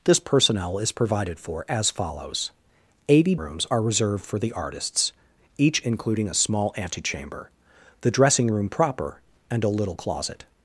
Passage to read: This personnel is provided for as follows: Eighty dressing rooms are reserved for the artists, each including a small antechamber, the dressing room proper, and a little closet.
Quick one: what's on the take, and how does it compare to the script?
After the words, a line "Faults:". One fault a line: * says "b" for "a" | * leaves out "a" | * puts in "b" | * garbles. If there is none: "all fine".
This personnel is provided for as follows: Eighty rooms are reserved for the artists, each including a small antechamber, the dressing room proper, and a little closet.
Faults:
* leaves out "dressing"